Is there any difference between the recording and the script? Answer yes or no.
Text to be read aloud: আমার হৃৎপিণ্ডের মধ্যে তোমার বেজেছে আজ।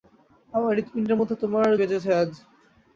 no